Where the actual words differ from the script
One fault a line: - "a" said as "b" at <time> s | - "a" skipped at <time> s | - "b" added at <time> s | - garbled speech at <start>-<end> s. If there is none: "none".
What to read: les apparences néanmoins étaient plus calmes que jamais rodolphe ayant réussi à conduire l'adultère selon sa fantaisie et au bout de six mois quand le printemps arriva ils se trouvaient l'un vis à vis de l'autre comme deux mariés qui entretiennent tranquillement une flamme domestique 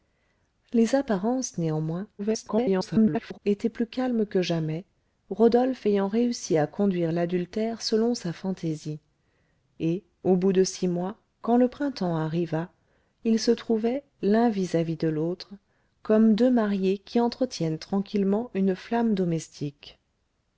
- garbled speech at 2.2-3.4 s